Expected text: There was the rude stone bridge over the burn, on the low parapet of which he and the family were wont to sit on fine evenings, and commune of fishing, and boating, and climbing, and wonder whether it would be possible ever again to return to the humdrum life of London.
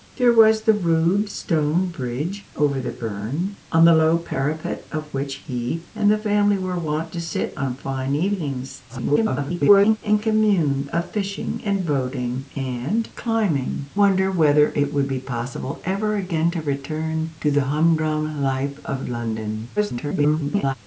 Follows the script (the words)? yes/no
no